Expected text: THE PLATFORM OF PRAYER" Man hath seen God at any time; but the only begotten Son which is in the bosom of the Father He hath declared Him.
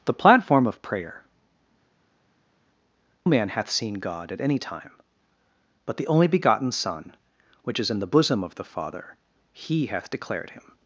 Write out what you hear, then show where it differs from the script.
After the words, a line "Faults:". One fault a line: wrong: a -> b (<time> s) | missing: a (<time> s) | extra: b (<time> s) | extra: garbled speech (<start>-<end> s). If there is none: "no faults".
THE PLATFORM OF PRAYER" Man hath seen God at any time; but the only begotten Son which is in the bosom of the Father He hath declared Him.
Faults:
no faults